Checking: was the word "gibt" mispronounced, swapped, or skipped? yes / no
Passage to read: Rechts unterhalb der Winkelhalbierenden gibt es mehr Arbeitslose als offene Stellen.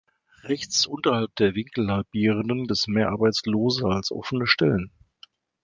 yes